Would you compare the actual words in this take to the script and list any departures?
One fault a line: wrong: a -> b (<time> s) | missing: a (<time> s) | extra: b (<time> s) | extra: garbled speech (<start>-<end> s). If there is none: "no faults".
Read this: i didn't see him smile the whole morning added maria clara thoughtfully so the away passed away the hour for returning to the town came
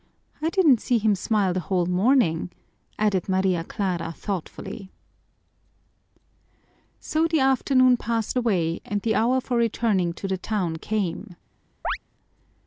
wrong: away -> afternoon (7.4 s)
extra: and (8.8 s)